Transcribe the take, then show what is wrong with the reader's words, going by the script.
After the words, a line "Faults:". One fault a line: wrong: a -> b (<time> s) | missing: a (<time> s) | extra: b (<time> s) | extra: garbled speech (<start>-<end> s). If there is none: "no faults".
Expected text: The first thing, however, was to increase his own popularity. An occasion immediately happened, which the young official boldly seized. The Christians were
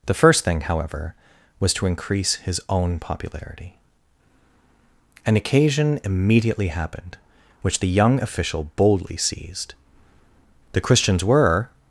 The first thing, however, was to increase his own popularity. An occasion immediately happened, which the young official boldly seized. The Christians were
Faults:
no faults